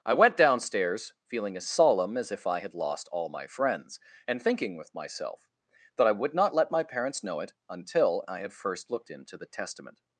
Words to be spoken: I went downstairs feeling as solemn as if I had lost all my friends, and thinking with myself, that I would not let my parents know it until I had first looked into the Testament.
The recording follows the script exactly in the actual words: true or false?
true